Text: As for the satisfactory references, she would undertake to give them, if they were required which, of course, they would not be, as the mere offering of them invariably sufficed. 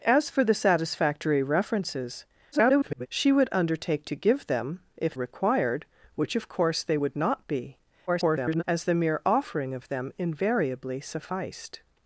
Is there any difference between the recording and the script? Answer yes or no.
yes